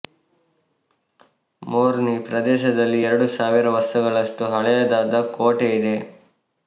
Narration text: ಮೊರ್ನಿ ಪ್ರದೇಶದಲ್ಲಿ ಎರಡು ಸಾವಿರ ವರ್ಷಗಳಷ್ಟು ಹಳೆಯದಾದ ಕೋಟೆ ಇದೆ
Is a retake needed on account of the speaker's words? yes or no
no